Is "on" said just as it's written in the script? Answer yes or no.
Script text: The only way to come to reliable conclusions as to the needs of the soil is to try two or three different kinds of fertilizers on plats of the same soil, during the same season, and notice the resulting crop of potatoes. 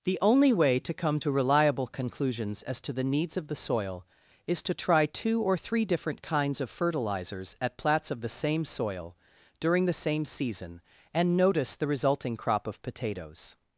no